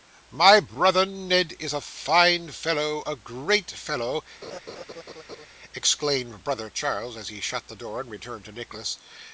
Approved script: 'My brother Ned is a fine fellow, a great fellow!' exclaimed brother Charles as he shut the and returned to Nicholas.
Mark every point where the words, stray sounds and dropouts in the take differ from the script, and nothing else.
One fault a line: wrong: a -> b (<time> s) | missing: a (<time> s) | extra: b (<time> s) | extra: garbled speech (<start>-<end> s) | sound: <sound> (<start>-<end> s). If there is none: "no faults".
sound: laugh (4.4-5.5 s)
extra: door (7.8 s)